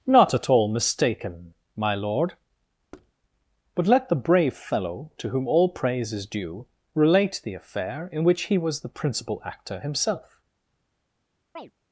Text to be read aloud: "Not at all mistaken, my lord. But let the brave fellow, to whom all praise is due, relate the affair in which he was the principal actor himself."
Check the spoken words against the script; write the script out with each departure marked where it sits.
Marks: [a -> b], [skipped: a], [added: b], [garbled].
"Not at all mistaken, my lord. But let the brave fellow, to whom all praise is due, relate the affair in which he was the principal actor himself."